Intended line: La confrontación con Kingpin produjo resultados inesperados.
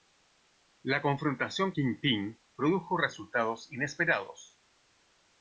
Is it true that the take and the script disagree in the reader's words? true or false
true